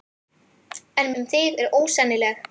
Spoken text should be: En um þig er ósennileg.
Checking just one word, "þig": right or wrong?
right